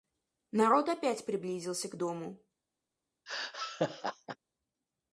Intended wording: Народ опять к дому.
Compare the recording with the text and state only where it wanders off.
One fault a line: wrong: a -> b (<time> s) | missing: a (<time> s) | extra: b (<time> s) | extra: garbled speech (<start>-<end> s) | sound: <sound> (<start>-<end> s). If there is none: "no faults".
extra: приблизился (1.2 s)
sound: laugh (3.3-4.4 s)